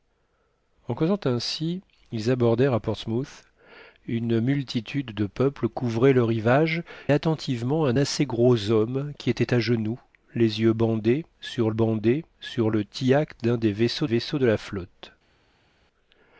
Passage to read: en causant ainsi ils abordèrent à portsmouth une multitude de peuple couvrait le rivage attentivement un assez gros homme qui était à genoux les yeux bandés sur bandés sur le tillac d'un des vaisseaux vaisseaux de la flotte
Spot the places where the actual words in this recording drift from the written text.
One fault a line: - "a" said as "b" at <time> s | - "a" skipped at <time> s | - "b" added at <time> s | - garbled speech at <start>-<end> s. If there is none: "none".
none